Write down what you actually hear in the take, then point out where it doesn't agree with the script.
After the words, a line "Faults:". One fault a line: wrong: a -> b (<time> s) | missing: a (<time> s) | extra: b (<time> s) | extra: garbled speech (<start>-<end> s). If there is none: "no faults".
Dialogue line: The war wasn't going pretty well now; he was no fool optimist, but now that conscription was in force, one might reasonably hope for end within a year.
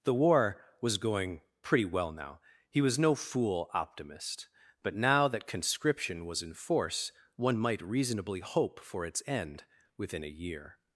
The war was going pretty well now; he was no fool optimist, but now that conscription was in force, one might reasonably hope for its end within a year.
Faults:
wrong: wasn't -> was (0.8 s)
extra: its (9.1 s)